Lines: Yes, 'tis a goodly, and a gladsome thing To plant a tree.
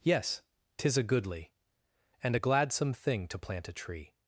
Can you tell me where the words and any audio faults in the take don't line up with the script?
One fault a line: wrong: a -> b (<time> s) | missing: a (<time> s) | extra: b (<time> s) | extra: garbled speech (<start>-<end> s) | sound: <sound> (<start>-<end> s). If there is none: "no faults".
no faults